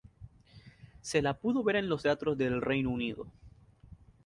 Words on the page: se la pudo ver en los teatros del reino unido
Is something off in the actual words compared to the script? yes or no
no